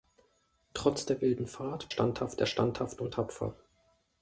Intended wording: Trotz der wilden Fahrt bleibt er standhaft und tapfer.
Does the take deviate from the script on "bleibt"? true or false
true